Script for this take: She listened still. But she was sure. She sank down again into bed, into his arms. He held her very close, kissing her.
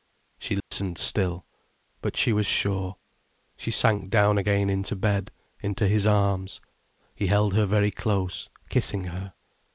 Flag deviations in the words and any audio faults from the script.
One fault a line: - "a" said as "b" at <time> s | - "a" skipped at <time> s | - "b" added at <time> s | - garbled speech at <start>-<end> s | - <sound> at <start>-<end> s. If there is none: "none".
- dropout at 0.6-0.7 s